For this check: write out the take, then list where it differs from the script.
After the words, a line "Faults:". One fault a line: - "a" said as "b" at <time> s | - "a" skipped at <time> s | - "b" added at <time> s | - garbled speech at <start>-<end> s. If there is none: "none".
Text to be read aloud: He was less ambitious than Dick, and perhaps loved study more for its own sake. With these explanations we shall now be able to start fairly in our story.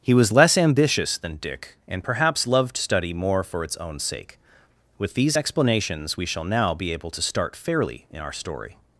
He was less ambitious than Dick, and perhaps loved study more for its own sake. With these explanations we shall now be able to start fairly in our story.
Faults:
none